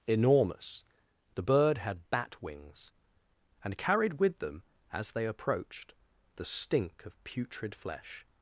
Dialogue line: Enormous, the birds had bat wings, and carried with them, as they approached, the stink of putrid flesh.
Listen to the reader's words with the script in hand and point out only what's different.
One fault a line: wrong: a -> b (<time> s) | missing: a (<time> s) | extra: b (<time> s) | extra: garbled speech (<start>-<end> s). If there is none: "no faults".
wrong: birds -> bird (1.4 s)